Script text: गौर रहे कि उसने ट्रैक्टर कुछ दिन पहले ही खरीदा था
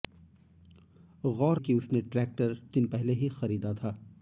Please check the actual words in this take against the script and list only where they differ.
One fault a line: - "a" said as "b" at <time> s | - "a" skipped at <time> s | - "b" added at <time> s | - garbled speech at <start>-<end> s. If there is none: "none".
- "रहे" skipped at 1.6 s
- "कुछ" skipped at 2.5 s